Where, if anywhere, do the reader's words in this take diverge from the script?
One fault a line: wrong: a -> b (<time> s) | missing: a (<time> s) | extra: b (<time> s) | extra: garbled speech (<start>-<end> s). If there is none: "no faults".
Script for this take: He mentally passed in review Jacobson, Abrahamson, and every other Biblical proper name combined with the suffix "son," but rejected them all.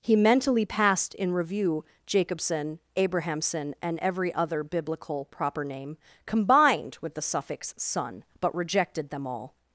no faults